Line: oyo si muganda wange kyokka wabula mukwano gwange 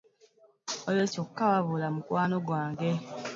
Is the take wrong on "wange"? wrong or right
wrong